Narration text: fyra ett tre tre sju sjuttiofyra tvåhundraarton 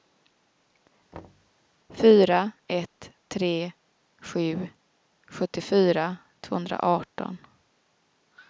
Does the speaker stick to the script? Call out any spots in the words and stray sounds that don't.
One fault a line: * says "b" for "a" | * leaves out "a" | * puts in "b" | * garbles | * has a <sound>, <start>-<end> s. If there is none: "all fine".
* has a thud, 1.1-1.5 s
* leaves out "tre"